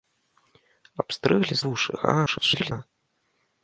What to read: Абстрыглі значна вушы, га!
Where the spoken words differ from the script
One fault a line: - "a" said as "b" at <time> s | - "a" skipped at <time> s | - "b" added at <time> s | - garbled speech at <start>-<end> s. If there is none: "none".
- "значна" skipped at 1.6 s
- garbled speech at 2.3-2.7 s